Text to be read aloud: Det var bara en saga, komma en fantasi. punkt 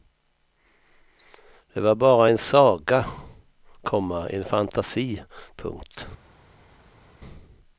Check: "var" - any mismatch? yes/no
no